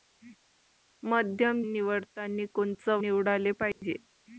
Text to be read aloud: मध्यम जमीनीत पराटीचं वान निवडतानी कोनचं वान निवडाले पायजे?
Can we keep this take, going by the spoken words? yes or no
no